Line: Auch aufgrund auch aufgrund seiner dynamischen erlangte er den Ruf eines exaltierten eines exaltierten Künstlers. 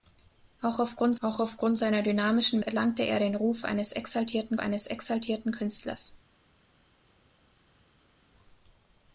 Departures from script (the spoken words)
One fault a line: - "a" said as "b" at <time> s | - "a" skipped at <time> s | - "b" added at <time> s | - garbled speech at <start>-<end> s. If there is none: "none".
none